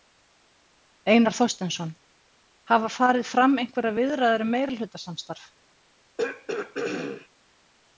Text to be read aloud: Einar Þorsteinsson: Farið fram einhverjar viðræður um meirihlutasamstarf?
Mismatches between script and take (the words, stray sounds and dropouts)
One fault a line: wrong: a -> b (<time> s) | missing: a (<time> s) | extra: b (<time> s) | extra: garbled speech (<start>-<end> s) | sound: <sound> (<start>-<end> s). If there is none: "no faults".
extra: Hafa (2.7 s)
sound: throat clearing (6.2-7.3 s)